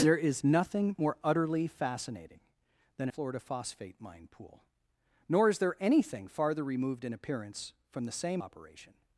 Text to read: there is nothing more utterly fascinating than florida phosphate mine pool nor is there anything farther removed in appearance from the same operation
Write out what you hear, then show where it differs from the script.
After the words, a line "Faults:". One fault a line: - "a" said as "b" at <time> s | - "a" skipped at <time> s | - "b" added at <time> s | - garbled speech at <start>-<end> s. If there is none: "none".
there is nothing more utterly fascinating than florida phosphate mine pool nor is there anything farther removed in appearance from the same operation
Faults:
none